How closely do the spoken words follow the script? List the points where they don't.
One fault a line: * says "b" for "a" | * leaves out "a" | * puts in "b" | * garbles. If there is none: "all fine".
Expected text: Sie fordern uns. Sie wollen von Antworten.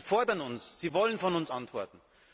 * puts in "uns"